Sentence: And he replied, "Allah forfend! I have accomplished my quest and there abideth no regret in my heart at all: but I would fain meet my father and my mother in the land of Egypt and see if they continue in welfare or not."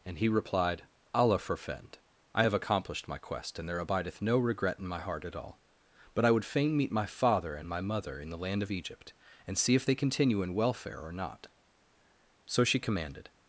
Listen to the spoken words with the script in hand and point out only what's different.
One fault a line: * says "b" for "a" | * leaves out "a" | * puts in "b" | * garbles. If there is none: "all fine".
* puts in "So she commanded"